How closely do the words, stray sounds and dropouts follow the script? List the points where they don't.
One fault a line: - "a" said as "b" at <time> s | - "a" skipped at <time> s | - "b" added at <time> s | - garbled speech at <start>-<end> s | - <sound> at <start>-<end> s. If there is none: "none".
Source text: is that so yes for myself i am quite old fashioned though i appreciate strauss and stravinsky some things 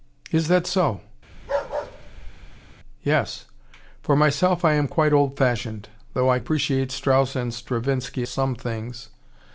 - bark at 1.3-2.8 s